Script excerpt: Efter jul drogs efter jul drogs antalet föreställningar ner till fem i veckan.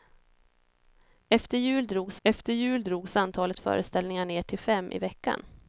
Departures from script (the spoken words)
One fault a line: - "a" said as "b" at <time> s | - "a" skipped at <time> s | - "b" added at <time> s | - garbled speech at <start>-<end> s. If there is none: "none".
none